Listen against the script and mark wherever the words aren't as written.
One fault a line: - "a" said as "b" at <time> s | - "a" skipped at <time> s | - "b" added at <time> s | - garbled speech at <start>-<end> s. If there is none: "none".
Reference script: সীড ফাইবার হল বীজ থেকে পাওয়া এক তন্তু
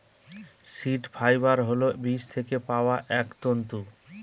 none